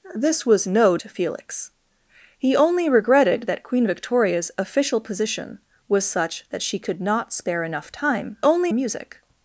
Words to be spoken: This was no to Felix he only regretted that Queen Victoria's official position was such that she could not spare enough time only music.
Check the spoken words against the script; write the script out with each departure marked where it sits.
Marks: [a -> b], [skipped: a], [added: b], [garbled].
This was no to Felix he only regretted that Queen Victoria's official position was such that she could not spare enough time only music.